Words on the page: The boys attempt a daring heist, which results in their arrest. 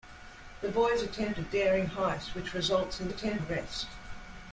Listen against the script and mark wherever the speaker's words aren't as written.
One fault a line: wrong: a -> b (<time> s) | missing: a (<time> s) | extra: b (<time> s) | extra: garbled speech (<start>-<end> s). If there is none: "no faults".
wrong: their -> attempt (3.1 s)